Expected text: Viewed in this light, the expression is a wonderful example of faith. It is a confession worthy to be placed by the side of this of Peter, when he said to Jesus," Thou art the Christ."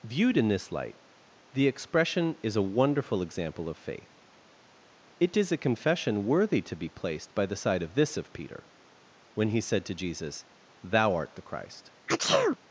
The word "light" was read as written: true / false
true